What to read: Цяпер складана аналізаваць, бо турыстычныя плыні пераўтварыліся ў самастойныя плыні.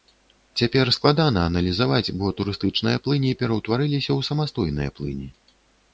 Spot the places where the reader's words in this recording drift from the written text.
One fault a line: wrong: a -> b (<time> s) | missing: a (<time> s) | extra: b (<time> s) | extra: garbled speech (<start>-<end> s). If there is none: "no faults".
no faults